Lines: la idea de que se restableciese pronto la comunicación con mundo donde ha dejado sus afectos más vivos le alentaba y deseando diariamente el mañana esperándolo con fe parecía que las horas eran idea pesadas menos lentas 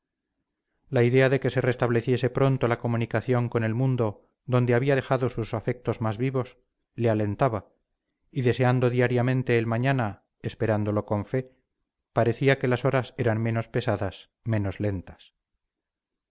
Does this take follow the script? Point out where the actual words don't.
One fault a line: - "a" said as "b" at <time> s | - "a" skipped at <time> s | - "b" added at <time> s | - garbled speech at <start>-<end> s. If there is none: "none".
- "el" added at 3.6 s
- "ha" said as "había" at 4.7 s
- "idea" said as "menos" at 13.4 s